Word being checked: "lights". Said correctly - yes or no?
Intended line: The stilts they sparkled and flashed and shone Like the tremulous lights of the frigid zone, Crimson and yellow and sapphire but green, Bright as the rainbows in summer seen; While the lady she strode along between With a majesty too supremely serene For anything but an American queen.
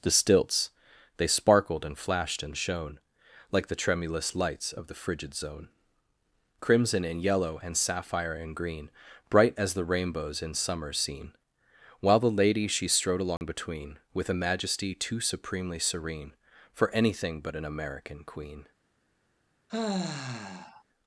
yes